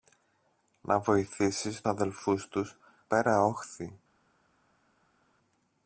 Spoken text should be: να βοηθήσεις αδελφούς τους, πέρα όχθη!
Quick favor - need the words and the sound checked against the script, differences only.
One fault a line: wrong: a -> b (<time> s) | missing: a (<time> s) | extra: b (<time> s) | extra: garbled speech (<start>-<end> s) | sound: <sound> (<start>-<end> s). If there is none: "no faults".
no faults